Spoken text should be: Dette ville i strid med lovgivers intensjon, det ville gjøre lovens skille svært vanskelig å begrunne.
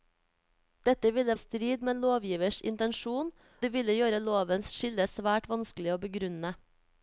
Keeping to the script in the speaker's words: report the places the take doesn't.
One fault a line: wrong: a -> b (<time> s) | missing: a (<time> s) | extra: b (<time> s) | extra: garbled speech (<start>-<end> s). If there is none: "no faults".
no faults